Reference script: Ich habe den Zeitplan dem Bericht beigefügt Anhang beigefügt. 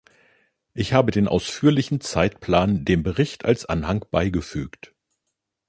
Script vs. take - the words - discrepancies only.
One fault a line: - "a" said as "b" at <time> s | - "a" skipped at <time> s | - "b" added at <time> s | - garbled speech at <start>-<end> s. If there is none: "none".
- "ausführlichen" added at 1.3 s
- "beigefügt" said as "als" at 3.5 s